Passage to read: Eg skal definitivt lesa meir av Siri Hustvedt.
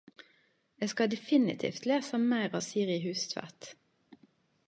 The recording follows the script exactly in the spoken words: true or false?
true